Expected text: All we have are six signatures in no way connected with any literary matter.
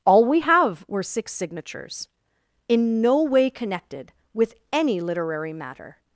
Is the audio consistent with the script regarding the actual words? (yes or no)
no